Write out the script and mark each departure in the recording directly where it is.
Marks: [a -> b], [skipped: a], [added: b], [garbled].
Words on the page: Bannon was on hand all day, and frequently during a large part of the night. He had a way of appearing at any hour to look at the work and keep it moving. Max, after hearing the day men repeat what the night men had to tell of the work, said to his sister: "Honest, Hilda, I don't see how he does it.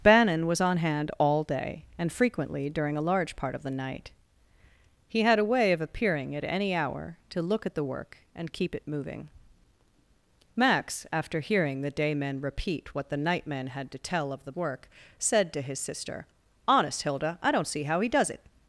Bannon was on hand all day, and frequently during a large part of the night. He had a way of appearing at any hour to look at the work and keep it moving. Max, after hearing the day men repeat what the night men had to tell of the work, said to his sister: "Honest, Hilda, I don't see how he does it.